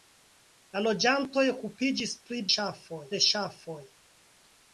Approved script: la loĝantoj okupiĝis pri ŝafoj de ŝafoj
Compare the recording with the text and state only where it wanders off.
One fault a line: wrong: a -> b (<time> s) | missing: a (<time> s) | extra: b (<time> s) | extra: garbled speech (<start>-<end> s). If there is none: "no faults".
no faults